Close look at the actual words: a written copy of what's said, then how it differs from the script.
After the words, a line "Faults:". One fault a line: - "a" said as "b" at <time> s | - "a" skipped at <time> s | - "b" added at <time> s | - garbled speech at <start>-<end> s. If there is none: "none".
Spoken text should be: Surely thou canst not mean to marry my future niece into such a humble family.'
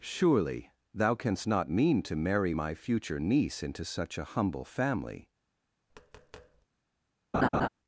Surely thou canst not mean to marry my future niece into such a humble family.'
Faults:
none